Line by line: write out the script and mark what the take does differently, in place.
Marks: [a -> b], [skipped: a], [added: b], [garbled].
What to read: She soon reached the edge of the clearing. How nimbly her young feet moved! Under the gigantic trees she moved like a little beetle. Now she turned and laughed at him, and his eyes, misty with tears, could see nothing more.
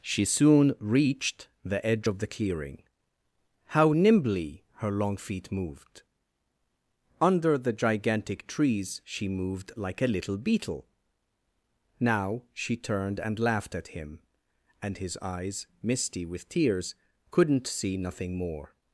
She soon reached the edge of the clearing. How nimbly her [young -> long] feet moved! Under the gigantic trees she moved like a little beetle. Now she turned and laughed at him, and his eyes, misty with tears, [could -> couldn't] see nothing more.